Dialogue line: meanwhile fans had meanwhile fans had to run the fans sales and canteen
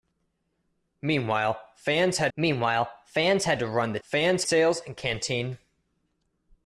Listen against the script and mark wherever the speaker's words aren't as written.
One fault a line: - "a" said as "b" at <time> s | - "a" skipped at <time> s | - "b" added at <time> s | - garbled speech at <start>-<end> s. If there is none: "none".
none